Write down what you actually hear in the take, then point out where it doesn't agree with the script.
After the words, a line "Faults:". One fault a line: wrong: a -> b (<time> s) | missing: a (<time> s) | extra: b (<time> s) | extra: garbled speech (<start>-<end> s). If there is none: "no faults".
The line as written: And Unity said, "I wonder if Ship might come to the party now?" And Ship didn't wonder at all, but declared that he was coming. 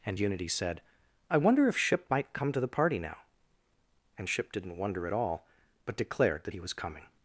And Unity said, "I wonder if Ship might come to the party now?" And Ship didn't wonder at all, but declared that he was coming.
Faults:
no faults